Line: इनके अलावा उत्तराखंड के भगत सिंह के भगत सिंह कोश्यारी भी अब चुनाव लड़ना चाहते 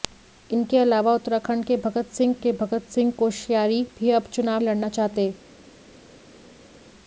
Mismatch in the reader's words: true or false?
false